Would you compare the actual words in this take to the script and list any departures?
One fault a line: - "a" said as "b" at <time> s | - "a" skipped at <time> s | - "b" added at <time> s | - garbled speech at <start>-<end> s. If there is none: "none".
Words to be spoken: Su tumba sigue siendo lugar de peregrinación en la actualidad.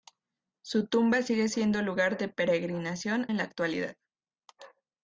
none